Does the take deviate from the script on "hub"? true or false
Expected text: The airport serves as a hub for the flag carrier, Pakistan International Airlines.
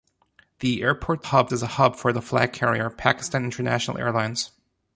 false